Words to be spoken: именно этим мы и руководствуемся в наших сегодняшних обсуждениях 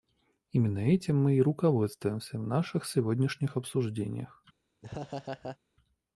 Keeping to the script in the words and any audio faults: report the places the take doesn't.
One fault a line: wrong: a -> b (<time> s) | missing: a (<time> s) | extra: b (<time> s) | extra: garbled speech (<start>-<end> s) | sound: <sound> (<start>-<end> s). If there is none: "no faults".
sound: laugh (4.8-5.6 s)